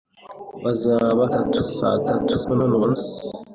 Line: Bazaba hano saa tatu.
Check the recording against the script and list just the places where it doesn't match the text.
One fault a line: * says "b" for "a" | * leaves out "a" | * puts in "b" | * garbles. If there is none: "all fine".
* says "tatu" for "hano"
* garbles